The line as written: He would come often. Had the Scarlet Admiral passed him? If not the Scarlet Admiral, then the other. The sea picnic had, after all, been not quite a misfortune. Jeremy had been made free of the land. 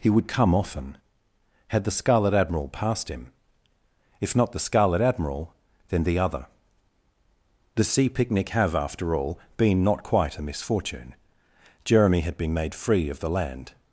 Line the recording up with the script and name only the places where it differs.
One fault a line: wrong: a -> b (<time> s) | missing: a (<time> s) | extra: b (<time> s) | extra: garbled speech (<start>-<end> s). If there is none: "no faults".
wrong: had -> have (8.5 s)